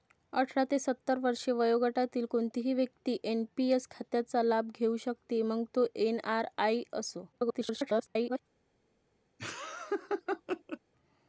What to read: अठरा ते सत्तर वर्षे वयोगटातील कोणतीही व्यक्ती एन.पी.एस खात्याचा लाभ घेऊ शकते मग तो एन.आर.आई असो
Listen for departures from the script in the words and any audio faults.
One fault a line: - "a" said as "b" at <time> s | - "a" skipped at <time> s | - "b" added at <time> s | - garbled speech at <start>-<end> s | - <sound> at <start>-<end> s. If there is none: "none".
- garbled speech at 7.3-8.4 s
- laugh at 9.4-10.8 s